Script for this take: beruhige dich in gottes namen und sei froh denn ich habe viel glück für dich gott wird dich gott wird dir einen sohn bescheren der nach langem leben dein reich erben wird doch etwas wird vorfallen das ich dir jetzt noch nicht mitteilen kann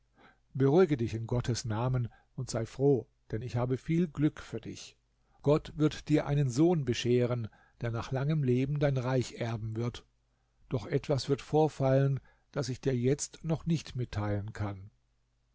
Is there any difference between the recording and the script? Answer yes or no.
yes